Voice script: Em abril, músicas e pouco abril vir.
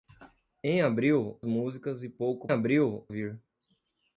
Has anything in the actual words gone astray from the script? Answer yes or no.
no